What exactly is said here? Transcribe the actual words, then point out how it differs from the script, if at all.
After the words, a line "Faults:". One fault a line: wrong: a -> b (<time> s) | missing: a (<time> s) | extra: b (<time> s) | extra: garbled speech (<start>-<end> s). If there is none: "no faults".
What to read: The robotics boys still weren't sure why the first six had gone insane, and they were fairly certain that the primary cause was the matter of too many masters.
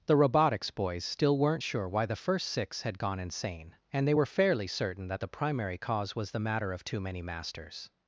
The robotics boys still weren't sure why the first six had gone insane, and they were fairly certain that the primary cause was the matter of too many masters.
Faults:
no faults